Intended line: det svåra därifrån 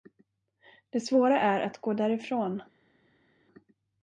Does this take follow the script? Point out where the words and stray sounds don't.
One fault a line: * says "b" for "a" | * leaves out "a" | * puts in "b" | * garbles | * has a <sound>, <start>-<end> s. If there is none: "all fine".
* puts in "är att gå"